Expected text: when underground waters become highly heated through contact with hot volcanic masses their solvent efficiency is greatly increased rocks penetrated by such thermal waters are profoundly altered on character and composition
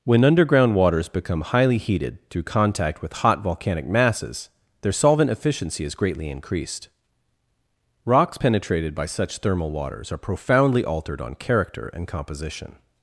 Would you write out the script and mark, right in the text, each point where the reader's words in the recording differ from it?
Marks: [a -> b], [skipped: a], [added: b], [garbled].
when underground waters become highly heated through contact with hot volcanic masses their solvent efficiency is greatly increased rocks penetrated by such thermal waters are profoundly altered on character and composition